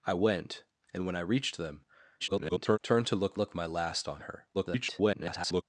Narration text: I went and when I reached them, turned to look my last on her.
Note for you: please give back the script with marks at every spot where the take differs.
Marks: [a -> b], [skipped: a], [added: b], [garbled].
I went and when I reached them, [garbled] turned to look [added: look] my last on her. [garbled]